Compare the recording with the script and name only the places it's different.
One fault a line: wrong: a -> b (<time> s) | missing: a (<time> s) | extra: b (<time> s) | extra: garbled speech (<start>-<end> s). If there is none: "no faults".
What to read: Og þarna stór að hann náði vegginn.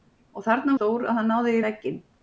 no faults